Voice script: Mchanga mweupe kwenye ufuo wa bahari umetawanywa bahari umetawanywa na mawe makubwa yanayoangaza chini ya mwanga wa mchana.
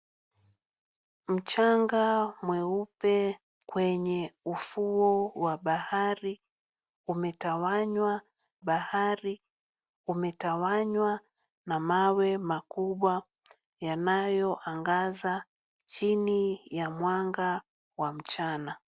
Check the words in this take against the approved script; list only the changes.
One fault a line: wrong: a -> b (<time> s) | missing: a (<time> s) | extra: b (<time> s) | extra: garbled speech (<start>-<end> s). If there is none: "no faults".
no faults